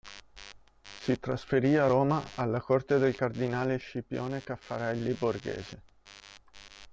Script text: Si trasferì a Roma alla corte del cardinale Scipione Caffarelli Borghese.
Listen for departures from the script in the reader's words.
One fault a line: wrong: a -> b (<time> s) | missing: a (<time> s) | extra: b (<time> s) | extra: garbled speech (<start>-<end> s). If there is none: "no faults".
no faults